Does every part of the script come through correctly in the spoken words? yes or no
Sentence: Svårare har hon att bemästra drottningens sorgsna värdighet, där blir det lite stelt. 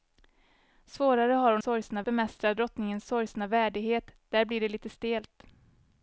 no